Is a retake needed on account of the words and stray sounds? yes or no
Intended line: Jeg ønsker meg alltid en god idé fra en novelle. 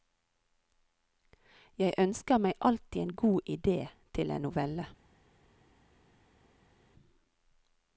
yes